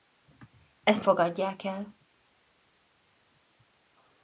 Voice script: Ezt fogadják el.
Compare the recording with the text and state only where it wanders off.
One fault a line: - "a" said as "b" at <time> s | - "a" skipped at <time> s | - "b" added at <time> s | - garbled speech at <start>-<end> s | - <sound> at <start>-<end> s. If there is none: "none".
none